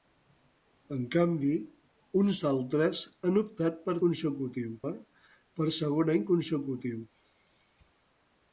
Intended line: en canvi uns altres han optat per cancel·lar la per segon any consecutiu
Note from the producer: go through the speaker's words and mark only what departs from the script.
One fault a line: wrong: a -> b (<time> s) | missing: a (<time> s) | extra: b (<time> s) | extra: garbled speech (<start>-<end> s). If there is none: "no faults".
wrong: cancel·lar -> consecutiu (4.0 s)